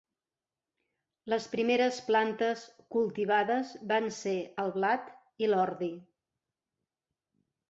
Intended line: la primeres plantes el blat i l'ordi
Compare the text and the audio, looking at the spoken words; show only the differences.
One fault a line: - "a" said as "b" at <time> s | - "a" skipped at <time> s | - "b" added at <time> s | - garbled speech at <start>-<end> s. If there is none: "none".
- "la" said as "les" at 1.3 s
- "cultivades van ser" added at 3.0 s